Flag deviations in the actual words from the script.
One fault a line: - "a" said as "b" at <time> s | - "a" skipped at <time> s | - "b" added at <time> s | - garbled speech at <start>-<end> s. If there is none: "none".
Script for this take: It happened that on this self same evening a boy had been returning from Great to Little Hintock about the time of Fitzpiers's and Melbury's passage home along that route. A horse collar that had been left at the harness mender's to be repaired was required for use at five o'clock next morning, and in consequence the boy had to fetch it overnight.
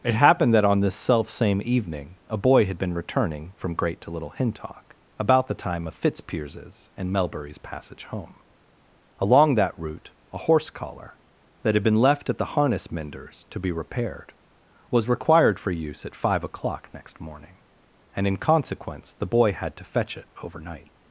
none